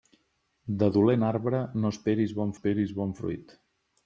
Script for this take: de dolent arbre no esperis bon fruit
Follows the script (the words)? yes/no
no